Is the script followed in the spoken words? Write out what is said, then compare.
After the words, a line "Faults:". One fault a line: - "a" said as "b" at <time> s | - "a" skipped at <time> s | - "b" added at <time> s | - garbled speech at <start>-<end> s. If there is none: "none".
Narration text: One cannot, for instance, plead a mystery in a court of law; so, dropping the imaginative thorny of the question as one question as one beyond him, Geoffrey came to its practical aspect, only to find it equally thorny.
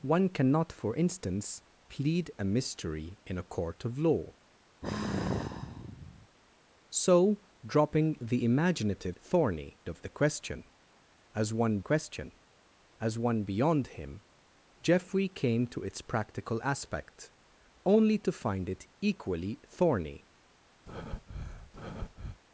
One cannot, for instance, plead a mystery in a court of law; so, dropping the imaginative thorny of the question as one question as one beyond him, Geoffrey came to its practical aspect, only to find it equally thorny.
Faults:
none